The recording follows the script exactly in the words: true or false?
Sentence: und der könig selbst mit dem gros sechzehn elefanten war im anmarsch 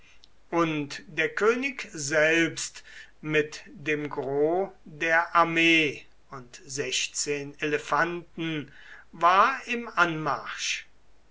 false